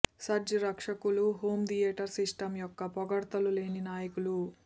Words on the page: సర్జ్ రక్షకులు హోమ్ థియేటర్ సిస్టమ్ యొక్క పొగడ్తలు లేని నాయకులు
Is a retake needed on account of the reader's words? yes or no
no